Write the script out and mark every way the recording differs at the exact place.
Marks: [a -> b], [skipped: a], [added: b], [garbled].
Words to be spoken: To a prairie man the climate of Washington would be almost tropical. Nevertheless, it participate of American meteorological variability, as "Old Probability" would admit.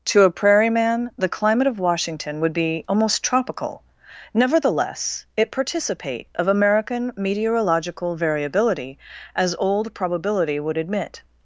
To a prairie man the climate of Washington would be almost tropical. Nevertheless, it participate of American meteorological variability, as "Old Probability" would admit.